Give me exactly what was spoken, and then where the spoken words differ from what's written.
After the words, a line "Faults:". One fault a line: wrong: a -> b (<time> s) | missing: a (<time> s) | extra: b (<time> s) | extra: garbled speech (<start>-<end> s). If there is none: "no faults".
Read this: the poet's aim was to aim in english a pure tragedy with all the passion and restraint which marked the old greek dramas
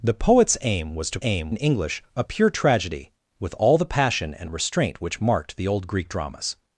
the poet's aim was to aim in english a pure tragedy with all the passion and restraint which marked the old greek dramas
Faults:
no faults